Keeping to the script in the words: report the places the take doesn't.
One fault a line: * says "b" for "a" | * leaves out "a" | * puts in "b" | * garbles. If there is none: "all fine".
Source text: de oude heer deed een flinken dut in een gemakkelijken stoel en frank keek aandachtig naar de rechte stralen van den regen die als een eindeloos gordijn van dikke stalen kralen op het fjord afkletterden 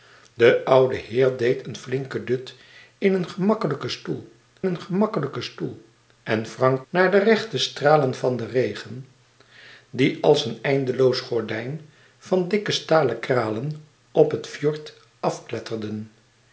* puts in "een gemakkelijken stoel"
* leaves out "keek aandachtig"